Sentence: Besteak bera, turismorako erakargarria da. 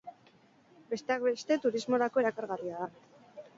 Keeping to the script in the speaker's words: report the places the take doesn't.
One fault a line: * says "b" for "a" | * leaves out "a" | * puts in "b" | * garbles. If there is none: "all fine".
* says "beste" for "bera"